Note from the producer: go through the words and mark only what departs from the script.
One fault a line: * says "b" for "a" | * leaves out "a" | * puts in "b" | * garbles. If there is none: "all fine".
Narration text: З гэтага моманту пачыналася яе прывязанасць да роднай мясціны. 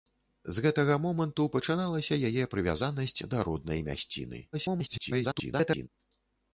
* garbles